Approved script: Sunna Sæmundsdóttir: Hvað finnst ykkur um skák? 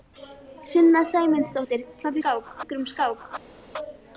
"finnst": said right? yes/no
no